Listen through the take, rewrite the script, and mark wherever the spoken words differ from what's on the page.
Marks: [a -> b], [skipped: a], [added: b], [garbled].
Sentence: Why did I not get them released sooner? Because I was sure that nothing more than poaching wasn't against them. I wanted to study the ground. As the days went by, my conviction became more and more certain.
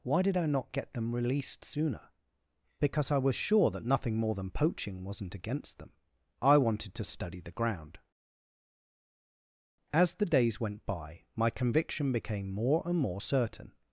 Why did I not get them released sooner? Because I was sure that nothing more than poaching wasn't against them. I wanted to study the ground. As the days went by, my conviction became more and more certain.